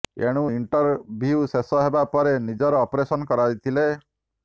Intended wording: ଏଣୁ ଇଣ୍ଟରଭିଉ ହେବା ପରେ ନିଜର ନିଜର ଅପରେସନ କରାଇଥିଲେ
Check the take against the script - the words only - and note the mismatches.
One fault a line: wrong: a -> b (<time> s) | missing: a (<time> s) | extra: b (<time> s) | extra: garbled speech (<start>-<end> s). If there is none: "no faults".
extra: ଶେଷ (1.5 s)
missing: ନିଜର (2.9 s)